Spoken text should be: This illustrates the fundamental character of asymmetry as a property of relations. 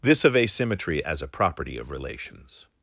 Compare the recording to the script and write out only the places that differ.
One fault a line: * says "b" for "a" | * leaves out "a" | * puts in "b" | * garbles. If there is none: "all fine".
* leaves out "illustrates the fundamental character"